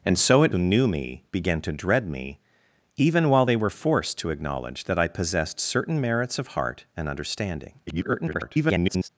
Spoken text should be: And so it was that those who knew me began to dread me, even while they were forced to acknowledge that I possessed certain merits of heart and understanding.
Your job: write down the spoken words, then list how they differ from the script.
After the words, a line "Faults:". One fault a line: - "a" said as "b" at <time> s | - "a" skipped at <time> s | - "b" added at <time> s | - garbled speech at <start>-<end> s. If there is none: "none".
And so it who knew me began to dread me, even while they were forced to acknowledge that I possessed certain merits of heart and understanding. [garbled]
Faults:
- "was that those" skipped at 0.5 s
- garbled speech at 7.9-9.1 s